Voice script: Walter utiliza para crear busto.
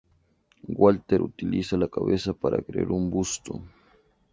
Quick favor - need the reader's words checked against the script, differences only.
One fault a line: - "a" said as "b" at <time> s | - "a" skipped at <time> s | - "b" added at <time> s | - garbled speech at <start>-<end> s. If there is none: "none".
- "la cabeza" added at 1.8 s
- "un" added at 2.9 s